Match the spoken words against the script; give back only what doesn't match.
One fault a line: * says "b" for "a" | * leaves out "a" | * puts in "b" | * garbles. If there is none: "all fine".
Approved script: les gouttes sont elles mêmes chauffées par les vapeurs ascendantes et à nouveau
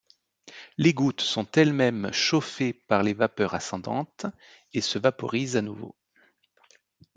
* puts in "se vaporisent"